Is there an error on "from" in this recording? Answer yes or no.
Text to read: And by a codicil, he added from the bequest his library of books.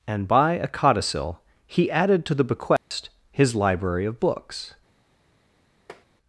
yes